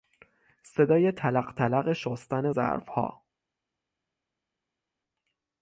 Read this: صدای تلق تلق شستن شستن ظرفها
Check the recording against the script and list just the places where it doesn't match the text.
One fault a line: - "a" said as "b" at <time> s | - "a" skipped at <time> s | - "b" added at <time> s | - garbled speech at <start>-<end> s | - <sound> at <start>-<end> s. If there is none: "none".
- "شستن" skipped at 2.5 s